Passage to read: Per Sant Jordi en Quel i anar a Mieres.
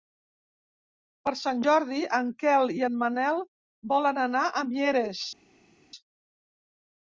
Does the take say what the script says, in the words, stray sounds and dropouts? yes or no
no